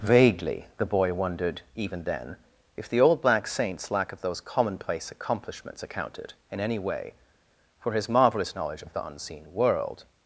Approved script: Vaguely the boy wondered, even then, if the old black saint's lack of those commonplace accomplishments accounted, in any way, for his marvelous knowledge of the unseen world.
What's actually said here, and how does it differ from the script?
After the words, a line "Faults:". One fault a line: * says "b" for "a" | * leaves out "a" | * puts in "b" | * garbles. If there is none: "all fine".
Vaguely the boy wondered, even then, if the old black saint's lack of those commonplace accomplishments accounted, in any way, for his marvelous knowledge of the unseen world.
Faults:
all fine